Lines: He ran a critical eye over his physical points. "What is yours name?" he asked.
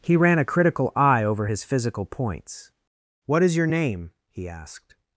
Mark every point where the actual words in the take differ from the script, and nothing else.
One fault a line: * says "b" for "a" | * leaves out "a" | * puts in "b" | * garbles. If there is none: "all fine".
* says "your" for "yours"